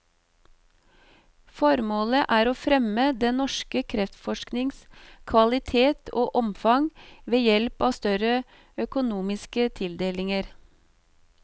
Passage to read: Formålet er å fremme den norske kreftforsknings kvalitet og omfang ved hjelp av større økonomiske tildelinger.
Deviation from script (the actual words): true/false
false